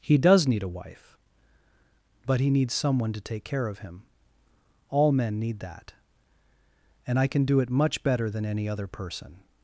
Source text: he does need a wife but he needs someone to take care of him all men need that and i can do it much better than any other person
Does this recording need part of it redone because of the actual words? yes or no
no